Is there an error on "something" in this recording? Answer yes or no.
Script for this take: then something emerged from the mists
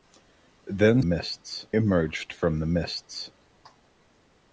yes